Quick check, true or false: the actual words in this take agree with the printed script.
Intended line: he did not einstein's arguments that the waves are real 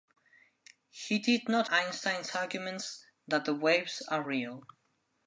true